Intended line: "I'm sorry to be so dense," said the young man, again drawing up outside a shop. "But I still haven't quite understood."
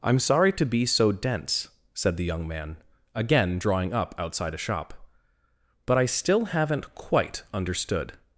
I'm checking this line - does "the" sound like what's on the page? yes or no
yes